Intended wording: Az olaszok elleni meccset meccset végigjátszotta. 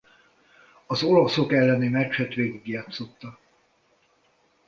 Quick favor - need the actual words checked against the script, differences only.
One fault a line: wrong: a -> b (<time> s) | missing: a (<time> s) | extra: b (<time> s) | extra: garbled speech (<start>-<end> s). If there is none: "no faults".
missing: meccset (2.3 s)